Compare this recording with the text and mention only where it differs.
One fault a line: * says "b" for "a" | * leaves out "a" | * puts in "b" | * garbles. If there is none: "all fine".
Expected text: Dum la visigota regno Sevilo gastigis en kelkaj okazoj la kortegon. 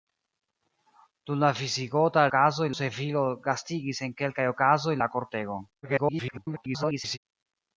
* says "okazoj" for "regno"
* garbles